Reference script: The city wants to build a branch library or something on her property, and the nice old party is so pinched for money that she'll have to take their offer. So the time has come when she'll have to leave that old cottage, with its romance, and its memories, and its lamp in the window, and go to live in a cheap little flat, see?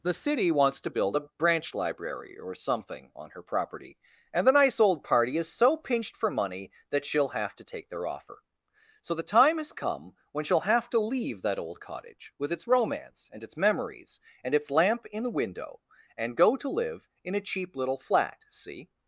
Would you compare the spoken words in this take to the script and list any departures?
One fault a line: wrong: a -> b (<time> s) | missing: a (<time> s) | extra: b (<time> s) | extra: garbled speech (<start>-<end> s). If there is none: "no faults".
no faults